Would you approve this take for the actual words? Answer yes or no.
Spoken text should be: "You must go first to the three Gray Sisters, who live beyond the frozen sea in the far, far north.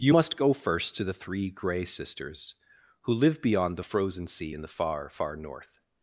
yes